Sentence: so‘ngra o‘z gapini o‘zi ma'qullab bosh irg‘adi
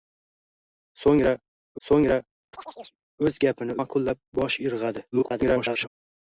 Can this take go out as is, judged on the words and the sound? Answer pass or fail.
fail